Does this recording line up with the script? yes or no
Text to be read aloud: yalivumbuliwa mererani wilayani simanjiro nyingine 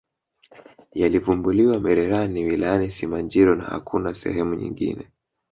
no